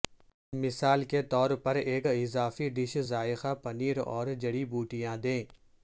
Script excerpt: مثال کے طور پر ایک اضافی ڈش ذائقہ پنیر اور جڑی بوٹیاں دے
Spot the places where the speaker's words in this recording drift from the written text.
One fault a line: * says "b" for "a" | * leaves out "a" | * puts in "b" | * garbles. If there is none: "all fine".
all fine